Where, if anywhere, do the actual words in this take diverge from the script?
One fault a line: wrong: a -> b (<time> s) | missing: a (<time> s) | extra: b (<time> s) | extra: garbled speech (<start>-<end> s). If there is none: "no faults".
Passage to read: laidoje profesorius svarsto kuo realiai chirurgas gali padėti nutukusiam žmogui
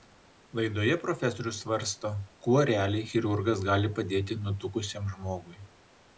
no faults